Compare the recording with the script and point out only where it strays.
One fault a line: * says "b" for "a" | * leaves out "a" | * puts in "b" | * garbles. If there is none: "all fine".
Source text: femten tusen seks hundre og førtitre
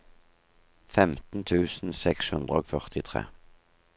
all fine